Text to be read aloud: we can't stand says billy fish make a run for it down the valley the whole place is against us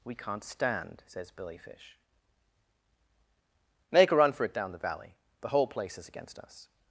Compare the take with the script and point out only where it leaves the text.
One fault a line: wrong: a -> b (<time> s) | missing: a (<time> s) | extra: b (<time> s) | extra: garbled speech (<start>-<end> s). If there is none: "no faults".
no faults